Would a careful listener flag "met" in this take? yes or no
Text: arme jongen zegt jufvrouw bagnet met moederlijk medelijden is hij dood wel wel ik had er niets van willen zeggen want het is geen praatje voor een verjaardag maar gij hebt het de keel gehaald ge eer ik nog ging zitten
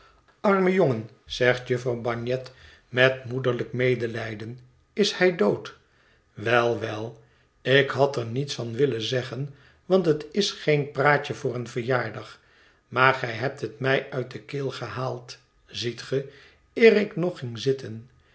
no